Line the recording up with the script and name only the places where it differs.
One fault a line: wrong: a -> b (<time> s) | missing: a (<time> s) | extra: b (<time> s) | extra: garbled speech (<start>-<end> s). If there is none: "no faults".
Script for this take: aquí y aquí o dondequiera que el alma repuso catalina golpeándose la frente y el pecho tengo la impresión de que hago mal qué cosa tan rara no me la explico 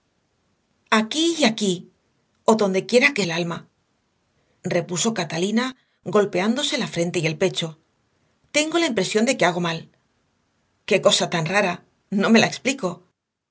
no faults